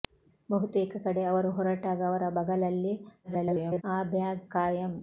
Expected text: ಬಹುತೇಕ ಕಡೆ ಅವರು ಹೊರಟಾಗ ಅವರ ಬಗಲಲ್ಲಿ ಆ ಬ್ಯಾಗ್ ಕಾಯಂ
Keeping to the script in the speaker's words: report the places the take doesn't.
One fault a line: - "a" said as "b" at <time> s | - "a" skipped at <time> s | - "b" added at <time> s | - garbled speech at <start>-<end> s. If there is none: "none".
- garbled speech at 3.2-3.8 s